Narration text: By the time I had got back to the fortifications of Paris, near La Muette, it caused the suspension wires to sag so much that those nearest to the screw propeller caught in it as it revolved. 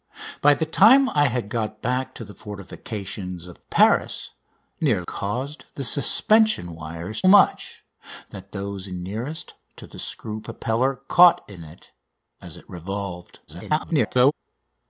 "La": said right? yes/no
no